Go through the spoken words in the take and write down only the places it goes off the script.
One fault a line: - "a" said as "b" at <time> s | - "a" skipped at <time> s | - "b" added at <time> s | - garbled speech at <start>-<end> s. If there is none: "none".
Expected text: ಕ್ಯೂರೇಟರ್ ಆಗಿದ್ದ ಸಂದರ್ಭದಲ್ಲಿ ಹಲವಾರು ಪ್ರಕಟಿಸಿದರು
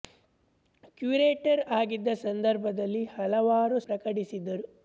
none